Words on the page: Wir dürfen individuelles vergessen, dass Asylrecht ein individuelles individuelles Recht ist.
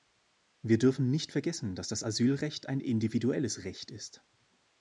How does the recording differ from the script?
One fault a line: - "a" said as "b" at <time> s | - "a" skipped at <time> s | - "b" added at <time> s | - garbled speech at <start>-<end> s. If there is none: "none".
- "individuelles" said as "nicht" at 1.1 s
- "das" added at 1.9 s
- "individuelles" skipped at 3.6 s